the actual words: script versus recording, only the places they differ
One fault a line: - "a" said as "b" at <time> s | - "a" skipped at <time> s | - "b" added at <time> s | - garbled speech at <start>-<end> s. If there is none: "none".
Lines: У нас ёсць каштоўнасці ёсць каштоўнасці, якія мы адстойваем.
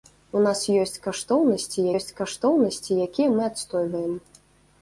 none